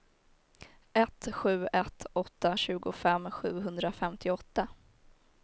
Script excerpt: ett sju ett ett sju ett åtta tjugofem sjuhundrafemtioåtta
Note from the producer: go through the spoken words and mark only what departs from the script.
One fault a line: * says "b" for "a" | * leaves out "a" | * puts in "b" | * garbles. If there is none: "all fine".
* leaves out "ett sju ett"